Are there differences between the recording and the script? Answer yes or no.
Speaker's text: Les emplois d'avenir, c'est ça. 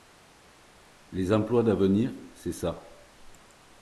no